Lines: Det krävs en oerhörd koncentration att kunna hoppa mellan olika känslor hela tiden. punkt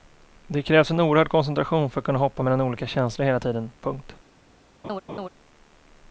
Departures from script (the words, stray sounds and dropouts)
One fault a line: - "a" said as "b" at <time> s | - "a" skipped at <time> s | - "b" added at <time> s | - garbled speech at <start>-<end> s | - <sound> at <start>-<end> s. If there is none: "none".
- "för" added at 1.9 s
- laugh at 4.8-5.3 s